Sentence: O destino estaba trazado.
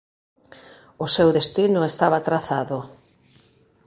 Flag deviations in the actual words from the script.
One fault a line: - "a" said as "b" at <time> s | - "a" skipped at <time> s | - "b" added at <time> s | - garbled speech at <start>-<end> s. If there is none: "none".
- "seu" added at 1.1 s